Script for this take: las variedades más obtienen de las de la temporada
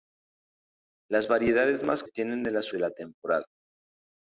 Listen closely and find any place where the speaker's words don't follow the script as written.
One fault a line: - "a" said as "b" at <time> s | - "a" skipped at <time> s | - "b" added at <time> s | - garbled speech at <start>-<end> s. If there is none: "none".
none